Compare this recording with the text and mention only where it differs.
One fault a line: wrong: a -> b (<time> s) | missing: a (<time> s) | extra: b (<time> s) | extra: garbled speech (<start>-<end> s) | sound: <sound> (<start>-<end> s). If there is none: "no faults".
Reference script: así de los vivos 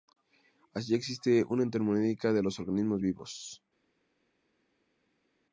extra: existe una termodinámica (0.9 s)
extra: organismos (2.6 s)